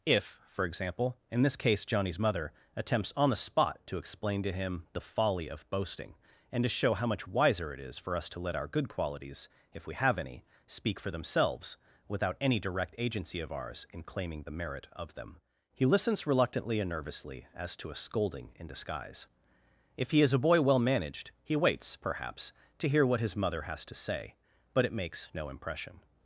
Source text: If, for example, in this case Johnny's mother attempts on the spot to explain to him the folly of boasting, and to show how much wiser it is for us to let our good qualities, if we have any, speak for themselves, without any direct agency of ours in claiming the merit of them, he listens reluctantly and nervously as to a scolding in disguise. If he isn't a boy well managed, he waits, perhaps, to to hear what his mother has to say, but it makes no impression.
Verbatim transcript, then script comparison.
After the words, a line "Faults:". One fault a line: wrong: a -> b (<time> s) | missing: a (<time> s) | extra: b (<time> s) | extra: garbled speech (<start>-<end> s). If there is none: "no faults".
If, for example, in this case Johnny's mother attempts on the spot to explain to him the folly of boasting, and to show how much wiser it is for us to let our good qualities, if we have any, speak for themselves, without any direct agency of ours in claiming the merit of them, he listens reluctantly and nervously as to a scolding in disguise. If he is a boy well managed, he waits, perhaps, to hear what his mother has to say, but it makes no impression.
Faults:
wrong: isn't -> is (20.2 s)
missing: to (22.9 s)